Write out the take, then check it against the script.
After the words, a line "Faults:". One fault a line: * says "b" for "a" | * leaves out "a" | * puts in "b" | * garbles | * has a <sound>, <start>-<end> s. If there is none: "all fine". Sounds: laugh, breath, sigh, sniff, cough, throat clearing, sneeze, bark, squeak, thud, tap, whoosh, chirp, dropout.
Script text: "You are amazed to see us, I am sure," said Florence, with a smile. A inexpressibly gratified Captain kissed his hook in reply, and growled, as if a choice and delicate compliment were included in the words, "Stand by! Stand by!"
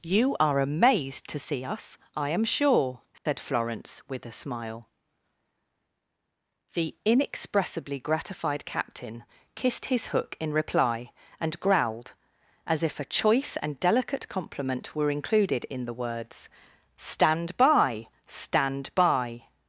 "You are amazed to see us, I am sure," said Florence, with a smile. The inexpressibly gratified Captain kissed his hook in reply, and growled, as if a choice and delicate compliment were included in the words, "Stand by! Stand by!"
Faults:
* has a dropout, 3.2-3.3 s
* says "The" for "A"